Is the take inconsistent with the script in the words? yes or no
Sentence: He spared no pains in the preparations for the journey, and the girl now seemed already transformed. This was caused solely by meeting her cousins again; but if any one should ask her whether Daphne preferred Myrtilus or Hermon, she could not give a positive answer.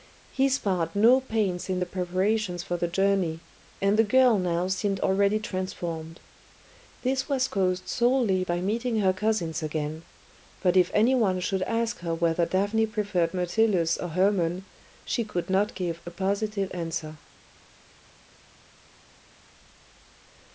no